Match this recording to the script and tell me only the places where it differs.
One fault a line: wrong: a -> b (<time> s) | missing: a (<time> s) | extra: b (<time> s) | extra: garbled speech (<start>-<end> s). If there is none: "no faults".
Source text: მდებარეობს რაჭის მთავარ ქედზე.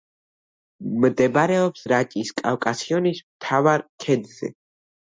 extra: კავკასიონის (2.4 s)